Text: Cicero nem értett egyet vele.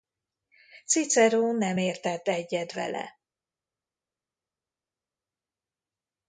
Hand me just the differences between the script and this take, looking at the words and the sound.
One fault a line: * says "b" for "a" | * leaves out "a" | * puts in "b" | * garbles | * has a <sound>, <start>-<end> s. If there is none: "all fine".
all fine